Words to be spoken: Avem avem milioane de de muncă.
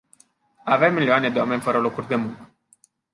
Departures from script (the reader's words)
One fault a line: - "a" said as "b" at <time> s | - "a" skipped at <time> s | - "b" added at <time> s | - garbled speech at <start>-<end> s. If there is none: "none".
- "avem" skipped at 0.9 s
- "oameni fără locuri" added at 1.4 s